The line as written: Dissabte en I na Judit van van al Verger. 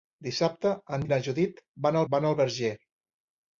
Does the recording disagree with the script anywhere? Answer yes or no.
no